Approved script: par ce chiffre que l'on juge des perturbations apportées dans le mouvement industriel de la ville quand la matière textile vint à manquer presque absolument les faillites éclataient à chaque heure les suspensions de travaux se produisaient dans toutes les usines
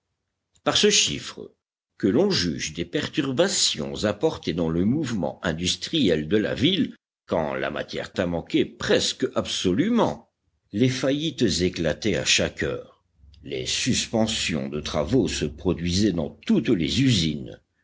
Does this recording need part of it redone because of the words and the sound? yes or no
yes